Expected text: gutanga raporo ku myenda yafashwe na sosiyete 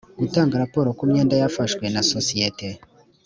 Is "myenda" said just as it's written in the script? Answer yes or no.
yes